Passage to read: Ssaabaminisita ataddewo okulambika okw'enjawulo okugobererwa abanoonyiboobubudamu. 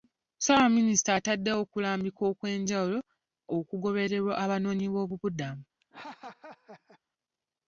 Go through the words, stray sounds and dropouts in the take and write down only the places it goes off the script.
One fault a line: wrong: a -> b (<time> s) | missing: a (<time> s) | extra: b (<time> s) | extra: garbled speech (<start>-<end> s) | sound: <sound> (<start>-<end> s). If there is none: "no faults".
sound: laugh (5.8-7.0 s)